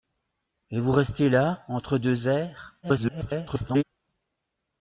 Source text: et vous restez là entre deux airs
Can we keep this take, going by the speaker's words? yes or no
no